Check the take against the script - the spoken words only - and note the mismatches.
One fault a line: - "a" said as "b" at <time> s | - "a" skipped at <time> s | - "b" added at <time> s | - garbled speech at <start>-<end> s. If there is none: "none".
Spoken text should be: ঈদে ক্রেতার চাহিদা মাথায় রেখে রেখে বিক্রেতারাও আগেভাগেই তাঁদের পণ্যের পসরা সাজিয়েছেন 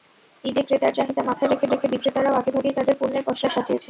none